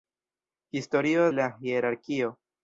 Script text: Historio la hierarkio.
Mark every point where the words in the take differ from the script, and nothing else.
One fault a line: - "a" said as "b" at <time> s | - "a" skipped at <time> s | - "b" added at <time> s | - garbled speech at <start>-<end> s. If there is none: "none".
none